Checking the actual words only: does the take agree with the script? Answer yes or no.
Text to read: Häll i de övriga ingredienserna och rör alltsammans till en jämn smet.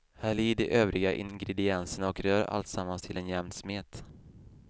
yes